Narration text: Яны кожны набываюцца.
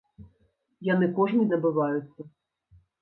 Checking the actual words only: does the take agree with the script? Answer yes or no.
yes